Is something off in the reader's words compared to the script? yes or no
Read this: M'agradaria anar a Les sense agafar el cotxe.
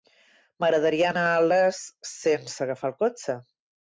no